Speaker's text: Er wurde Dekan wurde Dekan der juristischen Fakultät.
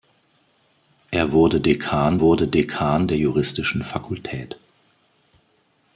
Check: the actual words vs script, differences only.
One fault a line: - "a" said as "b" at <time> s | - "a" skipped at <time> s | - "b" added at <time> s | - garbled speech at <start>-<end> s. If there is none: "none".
none